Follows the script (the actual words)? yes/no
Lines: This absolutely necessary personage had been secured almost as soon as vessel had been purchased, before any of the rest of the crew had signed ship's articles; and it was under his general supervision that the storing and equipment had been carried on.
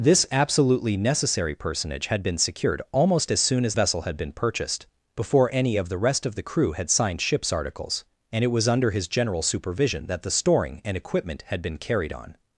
yes